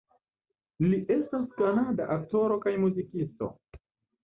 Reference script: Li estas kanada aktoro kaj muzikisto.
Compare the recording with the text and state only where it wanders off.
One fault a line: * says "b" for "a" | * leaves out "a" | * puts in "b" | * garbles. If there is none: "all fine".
all fine